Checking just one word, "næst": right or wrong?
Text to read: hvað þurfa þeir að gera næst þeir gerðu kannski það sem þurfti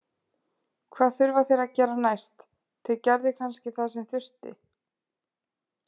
right